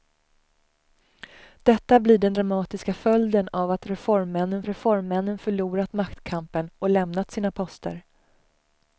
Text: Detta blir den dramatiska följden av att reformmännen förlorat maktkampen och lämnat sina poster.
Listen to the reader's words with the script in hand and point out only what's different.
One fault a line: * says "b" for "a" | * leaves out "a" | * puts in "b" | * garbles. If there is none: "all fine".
* puts in "reformmännen"